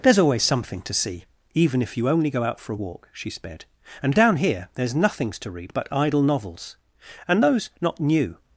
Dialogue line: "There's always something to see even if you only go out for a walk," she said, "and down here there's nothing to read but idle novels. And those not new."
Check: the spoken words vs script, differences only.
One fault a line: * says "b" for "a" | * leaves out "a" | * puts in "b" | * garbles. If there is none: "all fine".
* says "sped" for "said"
* says "nothings" for "nothing"